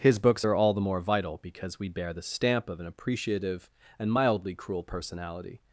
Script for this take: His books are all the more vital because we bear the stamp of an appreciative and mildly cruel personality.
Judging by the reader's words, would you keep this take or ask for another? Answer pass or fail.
pass